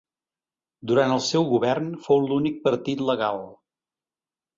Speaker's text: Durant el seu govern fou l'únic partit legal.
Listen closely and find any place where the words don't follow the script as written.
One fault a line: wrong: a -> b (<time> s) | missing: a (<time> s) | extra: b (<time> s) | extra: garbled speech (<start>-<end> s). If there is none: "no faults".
no faults